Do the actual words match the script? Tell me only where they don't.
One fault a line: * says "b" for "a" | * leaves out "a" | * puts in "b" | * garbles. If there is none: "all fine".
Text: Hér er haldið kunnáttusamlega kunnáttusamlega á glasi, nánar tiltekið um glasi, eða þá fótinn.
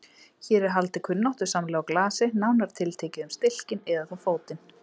* leaves out "kunnáttusamlega"
* says "stilkinn" for "glasi"